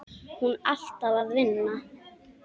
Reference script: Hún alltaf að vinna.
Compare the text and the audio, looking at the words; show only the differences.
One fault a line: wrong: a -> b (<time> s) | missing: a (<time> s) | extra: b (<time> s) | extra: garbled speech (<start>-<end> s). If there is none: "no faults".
no faults